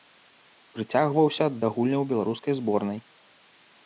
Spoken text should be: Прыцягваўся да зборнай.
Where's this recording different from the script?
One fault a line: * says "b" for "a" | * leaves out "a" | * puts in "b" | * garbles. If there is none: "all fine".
* puts in "гульняў беларускай"